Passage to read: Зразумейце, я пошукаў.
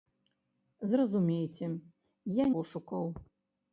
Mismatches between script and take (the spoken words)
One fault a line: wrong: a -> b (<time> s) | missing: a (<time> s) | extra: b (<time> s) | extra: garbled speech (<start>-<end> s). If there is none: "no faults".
no faults